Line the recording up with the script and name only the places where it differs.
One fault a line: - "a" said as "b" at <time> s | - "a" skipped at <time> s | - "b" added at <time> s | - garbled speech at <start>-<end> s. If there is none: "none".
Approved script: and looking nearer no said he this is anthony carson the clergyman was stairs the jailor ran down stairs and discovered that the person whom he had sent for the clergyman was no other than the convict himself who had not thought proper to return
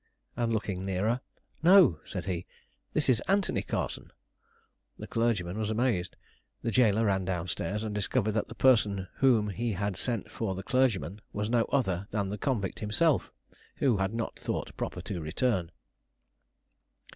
- "stairs" said as "amazed" at 5.7 s